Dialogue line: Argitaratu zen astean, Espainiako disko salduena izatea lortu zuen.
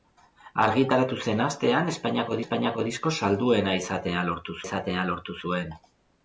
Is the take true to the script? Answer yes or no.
no